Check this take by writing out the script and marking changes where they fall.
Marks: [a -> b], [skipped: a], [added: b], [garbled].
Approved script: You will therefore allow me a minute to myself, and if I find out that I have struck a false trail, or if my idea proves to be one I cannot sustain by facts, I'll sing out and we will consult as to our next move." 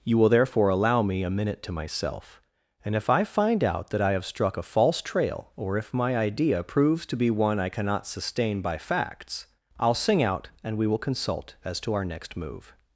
You will therefore allow me a minute to myself, and if I find out that I have struck a false trail, or if my idea proves to be one I cannot sustain by facts, I'll sing out and we will consult as to our next move."